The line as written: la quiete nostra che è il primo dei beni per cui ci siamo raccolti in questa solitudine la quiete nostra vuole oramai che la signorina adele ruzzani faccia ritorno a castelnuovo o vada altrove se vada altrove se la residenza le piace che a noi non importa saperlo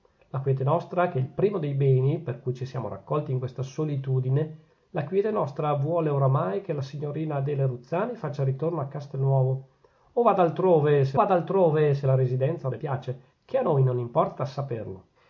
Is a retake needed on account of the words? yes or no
no